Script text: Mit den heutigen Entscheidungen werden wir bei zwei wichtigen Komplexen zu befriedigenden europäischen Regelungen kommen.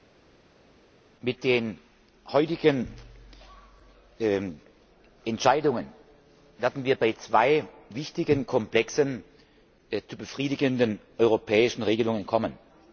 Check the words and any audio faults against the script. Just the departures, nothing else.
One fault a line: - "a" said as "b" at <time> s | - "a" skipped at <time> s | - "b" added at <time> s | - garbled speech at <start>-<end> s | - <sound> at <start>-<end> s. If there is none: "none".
none